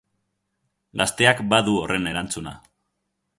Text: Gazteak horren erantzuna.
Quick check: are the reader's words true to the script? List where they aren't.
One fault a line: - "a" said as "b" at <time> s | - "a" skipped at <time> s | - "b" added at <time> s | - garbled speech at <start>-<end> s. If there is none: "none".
- "badu" added at 1.5 s